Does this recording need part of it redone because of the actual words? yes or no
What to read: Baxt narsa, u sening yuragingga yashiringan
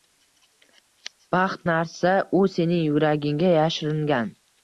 no